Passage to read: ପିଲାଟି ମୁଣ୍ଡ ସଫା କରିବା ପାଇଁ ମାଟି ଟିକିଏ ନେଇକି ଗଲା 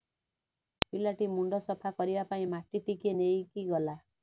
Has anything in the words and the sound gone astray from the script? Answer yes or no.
no